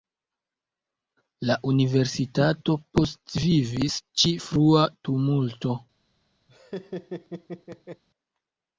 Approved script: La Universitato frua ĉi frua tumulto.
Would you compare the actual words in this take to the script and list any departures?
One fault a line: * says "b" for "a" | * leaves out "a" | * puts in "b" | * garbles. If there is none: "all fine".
* says "postvivis" for "frua"